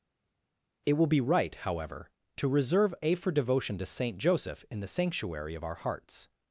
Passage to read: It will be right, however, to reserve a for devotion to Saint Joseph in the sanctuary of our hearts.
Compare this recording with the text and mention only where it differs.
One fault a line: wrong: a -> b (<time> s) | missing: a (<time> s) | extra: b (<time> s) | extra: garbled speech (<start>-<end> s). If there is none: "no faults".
no faults